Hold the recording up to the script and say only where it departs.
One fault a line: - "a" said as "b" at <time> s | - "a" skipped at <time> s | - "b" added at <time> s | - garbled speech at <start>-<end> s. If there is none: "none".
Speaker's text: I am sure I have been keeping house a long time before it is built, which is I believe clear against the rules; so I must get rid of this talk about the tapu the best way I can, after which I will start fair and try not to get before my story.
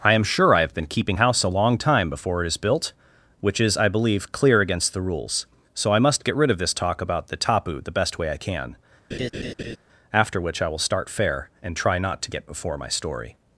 none